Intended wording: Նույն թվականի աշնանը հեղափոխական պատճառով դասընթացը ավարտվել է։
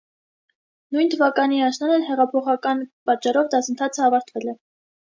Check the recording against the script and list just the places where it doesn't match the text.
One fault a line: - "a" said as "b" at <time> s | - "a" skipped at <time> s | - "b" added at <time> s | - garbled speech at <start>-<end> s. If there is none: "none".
none